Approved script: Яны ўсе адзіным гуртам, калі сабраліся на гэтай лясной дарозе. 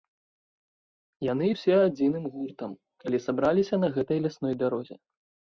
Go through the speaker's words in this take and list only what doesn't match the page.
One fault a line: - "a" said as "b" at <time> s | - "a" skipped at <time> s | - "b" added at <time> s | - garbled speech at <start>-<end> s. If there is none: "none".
none